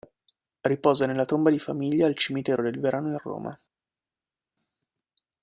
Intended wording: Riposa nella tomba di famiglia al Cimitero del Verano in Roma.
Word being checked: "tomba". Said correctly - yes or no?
yes